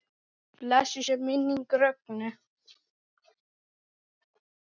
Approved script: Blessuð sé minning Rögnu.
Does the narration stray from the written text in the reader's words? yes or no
no